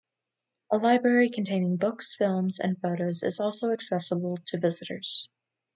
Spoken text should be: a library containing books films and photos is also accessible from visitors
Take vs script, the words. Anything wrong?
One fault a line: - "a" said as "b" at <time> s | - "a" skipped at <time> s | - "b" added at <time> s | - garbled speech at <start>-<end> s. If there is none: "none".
- "from" said as "to" at 4.4 s